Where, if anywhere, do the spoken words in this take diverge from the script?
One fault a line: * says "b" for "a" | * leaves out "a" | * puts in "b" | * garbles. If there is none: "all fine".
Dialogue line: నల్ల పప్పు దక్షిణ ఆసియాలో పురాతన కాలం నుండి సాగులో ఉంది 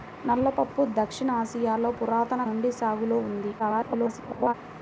* leaves out "కాలం"
* garbles